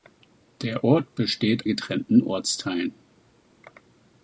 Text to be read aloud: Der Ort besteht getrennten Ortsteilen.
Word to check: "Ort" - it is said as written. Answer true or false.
true